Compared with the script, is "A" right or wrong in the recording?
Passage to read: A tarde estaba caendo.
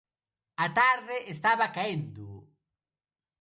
right